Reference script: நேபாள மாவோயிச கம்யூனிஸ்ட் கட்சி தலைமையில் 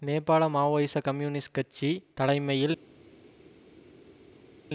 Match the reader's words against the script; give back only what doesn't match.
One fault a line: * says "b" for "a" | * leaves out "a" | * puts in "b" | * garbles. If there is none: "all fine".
all fine